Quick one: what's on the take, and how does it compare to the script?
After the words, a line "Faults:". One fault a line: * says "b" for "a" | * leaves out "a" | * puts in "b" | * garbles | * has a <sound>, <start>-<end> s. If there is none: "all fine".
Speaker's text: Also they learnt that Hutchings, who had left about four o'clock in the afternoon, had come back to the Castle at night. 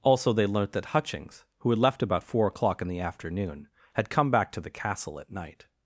Also they learnt that Hutchings, who had left about four o'clock in the afternoon, had come back to the Castle at night.
Faults:
all fine